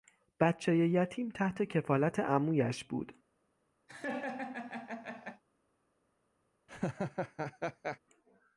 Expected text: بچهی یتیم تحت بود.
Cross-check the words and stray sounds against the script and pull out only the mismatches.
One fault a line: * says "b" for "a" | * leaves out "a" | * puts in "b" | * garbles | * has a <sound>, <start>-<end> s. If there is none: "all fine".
* puts in "کفالت عمویش"
* has a laugh, 3.9-5.4 s
* has a laugh, 6.7-8.0 s